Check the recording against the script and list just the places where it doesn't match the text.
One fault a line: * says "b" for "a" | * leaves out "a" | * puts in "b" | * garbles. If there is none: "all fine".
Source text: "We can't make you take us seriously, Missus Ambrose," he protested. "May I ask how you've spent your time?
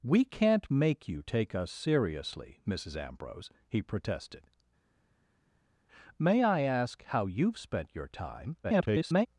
* garbles